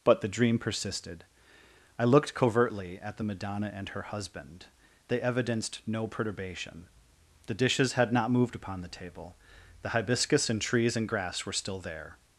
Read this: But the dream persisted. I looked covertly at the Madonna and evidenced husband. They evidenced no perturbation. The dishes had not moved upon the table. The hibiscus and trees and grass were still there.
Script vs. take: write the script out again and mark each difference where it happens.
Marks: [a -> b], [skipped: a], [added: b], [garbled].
But the dream persisted. I looked covertly at the Madonna and [evidenced -> her] husband. They evidenced no perturbation. The dishes had not moved upon the table. The hibiscus and trees and grass were still there.